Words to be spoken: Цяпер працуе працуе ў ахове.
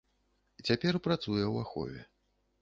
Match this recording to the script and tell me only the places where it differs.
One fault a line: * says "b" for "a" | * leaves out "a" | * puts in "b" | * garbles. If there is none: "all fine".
* leaves out "працуе"